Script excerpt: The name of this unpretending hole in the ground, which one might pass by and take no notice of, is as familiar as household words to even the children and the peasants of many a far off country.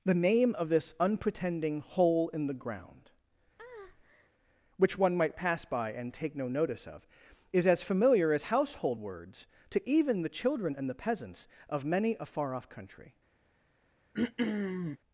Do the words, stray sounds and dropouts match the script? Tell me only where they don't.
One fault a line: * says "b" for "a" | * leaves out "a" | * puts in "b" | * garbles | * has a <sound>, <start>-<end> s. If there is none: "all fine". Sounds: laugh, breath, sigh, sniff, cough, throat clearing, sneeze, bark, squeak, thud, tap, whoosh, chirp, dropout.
* has a breath, 3.6-4.3 s
* has a throat clearing, 14.1-15.0 s